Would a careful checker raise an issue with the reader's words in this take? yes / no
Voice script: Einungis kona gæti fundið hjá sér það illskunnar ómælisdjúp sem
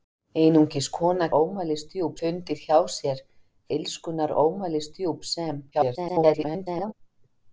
yes